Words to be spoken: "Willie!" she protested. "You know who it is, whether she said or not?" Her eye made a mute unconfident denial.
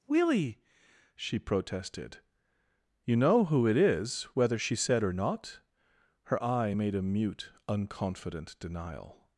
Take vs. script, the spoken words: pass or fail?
pass